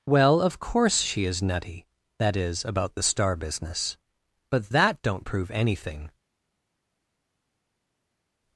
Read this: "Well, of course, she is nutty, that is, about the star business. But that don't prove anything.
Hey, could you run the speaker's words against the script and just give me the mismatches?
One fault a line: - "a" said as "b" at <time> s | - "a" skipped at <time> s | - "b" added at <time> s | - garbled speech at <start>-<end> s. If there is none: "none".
none